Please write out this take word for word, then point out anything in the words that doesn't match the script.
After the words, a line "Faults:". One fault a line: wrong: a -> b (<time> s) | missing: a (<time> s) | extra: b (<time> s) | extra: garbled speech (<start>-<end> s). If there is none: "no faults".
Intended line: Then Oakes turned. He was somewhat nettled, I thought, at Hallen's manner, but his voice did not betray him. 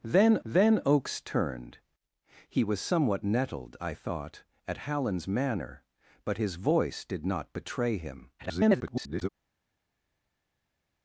Then then Oakes turned. He was somewhat nettled, I thought, at Hallen's manner, but his voice did not betray him. [garbled]
Faults:
extra: then (0.4 s)
extra: garbled speech (8.4-9.3 s)